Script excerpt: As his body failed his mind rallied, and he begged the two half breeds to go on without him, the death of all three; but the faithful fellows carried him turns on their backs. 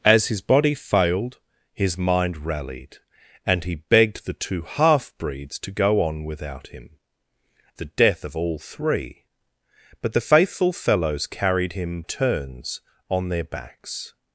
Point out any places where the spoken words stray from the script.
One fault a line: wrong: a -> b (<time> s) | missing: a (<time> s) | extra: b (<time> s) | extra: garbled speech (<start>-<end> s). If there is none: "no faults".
no faults